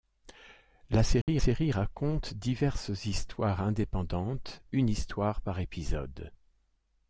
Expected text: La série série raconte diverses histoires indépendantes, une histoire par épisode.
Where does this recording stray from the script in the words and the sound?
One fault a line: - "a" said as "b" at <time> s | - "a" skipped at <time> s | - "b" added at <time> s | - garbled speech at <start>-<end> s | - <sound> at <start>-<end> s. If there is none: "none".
- dropout at 1.2-1.3 s